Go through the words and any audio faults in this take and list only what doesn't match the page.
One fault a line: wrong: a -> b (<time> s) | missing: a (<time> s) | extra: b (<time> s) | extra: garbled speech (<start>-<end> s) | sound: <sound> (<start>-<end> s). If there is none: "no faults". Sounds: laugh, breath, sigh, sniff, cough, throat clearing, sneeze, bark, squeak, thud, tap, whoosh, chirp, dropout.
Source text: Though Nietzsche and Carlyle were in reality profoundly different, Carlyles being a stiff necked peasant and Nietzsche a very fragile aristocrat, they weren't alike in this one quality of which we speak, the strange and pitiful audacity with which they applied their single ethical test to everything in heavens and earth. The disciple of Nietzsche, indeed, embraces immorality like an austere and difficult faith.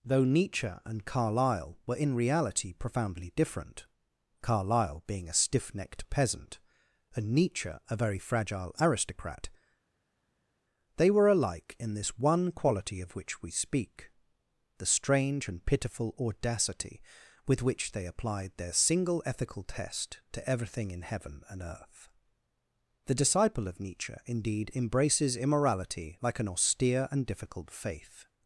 wrong: Carlyles -> Carlyle (4.4 s)
wrong: weren't -> were (11.1 s)
wrong: heavens -> heaven (21.0 s)